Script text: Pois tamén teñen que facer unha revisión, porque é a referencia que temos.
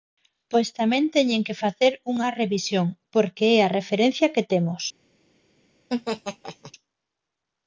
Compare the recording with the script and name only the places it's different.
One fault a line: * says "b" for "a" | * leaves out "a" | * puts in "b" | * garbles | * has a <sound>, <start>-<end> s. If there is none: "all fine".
* has a laugh, 5.9-6.7 s